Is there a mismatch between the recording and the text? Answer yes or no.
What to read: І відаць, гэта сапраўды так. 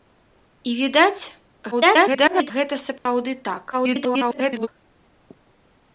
yes